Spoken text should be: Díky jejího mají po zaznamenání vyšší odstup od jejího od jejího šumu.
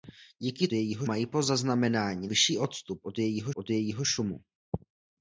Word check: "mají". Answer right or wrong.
right